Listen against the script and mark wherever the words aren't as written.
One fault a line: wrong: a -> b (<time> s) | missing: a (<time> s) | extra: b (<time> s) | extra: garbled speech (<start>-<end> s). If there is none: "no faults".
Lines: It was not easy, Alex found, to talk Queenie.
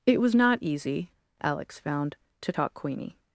no faults